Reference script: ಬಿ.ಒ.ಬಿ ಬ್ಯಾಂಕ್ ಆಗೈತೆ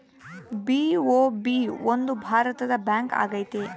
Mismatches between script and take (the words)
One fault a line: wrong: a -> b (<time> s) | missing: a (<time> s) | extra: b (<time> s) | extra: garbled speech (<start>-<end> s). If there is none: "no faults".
extra: ಒಂದು ಭಾರತದ (1.9 s)